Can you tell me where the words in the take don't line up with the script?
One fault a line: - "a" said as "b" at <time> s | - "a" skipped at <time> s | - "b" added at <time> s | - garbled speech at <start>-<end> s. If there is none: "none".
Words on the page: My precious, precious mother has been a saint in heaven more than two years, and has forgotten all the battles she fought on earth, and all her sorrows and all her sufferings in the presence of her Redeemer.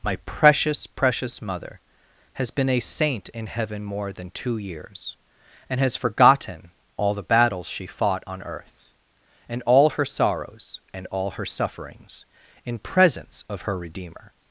- "the" skipped at 12.8 s